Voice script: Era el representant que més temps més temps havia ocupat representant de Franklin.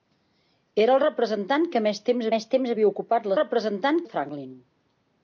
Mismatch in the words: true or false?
false